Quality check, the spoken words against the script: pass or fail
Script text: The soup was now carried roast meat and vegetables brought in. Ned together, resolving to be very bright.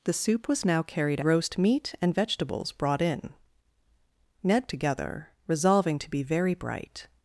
pass